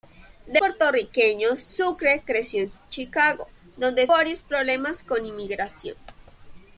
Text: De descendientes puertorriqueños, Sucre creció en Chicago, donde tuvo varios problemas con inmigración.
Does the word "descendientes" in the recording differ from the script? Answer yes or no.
yes